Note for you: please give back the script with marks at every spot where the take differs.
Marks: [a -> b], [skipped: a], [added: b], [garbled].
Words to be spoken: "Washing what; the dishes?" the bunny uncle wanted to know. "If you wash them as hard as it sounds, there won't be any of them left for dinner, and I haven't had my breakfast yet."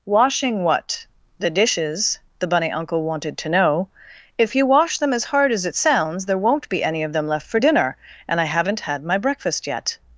"Washing what; the dishes?" the bunny uncle wanted to know. "If you wash them as hard as it sounds, there won't be any of them left for dinner, and I haven't had my breakfast yet."